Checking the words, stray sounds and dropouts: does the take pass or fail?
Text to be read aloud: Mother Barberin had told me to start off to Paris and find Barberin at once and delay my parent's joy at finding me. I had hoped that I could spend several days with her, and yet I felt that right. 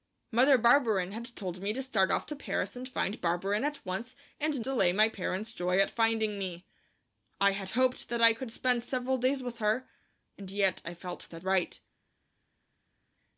pass